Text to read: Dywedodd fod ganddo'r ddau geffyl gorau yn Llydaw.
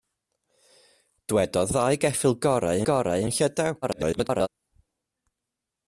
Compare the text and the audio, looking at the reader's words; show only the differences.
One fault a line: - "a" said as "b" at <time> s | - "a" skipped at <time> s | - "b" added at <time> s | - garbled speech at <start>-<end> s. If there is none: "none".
- "fod ganddo'r" skipped at 1.7 s
- "gorau" added at 2.9 s
- garbled speech at 3.8-4.5 s